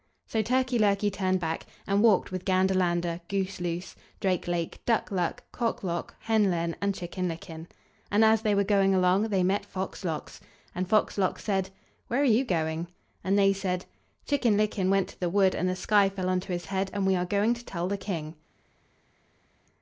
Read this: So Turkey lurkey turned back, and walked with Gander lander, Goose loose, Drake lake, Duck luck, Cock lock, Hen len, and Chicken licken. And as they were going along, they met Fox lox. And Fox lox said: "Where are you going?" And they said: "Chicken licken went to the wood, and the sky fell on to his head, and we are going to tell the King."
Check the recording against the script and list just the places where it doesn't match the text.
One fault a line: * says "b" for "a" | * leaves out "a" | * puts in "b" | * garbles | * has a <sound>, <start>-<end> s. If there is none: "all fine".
all fine